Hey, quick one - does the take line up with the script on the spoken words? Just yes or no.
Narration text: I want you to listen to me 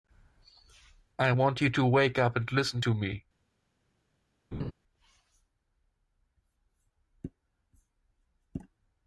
no